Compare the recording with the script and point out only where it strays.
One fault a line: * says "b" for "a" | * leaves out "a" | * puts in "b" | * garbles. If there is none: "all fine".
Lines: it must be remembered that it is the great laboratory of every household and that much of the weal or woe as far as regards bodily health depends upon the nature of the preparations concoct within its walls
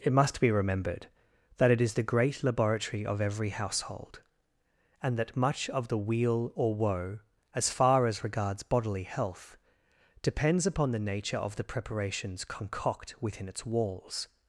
all fine